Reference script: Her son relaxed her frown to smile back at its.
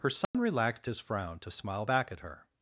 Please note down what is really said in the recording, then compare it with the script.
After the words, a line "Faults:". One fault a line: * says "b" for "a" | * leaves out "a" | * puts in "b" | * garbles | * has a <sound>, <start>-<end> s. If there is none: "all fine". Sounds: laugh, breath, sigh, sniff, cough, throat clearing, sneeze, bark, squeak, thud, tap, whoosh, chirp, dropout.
Her son relaxed his frown to smile back at her.
Faults:
* has a dropout, 0.2-0.3 s
* says "his" for "her"
* says "her" for "its"